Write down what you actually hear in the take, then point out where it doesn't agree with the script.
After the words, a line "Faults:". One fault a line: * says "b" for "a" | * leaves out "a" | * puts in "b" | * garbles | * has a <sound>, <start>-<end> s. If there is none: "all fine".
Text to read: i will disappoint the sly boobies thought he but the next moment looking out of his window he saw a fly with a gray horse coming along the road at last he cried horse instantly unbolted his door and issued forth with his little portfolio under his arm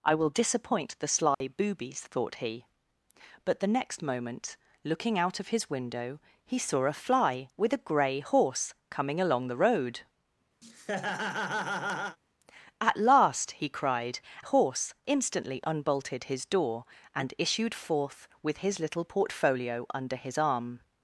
i will disappoint the sly boobies thought he but the next moment looking out of his window he saw a fly with a gray horse coming along the road at last he cried horse instantly unbolted his door and issued forth with his little portfolio under his arm
Faults:
* has a dropout, 1.3-1.4 s
* has a laugh, 10.6-12.2 s